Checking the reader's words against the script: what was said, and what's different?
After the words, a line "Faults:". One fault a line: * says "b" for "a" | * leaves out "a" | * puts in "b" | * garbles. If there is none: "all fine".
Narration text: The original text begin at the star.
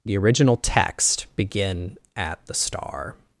The original text begin at the star.
Faults:
all fine